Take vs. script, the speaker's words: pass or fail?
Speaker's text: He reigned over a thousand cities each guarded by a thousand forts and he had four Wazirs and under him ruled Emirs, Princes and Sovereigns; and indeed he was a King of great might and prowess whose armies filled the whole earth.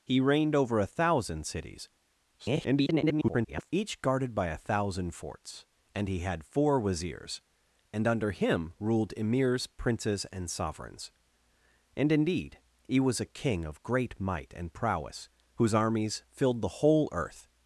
fail